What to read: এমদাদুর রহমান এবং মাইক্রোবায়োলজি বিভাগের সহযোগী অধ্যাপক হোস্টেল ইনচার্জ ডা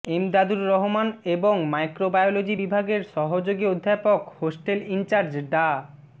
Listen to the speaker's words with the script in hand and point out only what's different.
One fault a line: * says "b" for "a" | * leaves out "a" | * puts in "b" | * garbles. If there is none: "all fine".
all fine